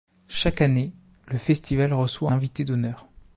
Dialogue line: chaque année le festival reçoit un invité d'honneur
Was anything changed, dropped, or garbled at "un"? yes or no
yes